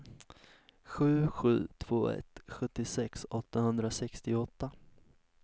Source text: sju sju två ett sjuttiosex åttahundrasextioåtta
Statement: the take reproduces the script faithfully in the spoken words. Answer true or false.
true